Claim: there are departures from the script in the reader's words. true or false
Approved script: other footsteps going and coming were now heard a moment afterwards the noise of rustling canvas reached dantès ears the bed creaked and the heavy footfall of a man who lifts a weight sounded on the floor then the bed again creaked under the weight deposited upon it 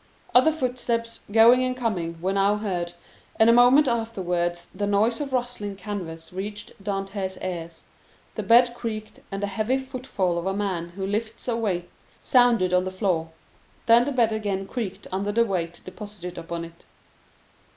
true